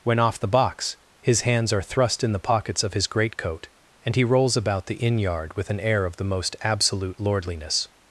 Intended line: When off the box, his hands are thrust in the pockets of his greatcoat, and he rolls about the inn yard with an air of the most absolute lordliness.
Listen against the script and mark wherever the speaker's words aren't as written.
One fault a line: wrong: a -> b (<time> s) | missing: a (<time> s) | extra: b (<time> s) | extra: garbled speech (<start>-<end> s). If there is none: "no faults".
no faults